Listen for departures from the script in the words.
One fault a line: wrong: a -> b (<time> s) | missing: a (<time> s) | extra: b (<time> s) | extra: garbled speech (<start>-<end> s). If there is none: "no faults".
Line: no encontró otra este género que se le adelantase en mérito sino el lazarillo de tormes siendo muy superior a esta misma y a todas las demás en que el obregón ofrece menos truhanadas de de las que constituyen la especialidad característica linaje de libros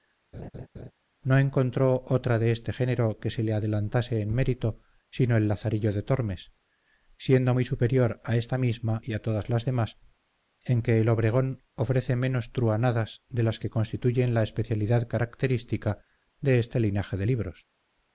extra: de (2.4 s)
missing: de (13.4 s)
extra: de este (16.4 s)